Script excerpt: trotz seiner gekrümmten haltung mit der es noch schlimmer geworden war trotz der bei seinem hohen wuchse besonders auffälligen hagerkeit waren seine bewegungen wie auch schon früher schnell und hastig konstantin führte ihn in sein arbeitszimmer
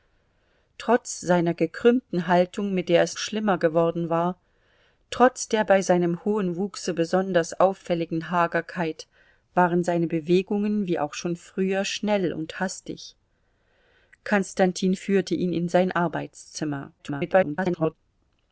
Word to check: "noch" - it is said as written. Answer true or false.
false